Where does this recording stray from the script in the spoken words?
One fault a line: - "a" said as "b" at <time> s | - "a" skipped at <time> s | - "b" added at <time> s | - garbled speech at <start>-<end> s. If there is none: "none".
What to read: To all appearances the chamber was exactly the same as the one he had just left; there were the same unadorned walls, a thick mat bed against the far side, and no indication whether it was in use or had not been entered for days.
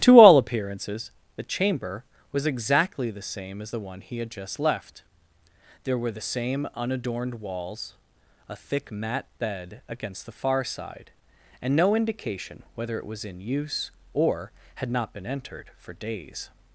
none